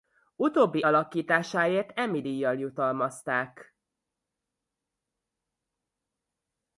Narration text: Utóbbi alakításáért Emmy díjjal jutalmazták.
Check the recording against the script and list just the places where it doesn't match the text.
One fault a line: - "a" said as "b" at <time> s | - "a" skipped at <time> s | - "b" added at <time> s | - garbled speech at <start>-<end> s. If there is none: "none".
none